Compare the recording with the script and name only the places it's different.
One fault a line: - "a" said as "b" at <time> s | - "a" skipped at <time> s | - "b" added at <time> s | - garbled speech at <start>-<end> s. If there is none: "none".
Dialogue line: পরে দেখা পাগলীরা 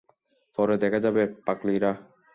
- "যাবে" added at 1.0 s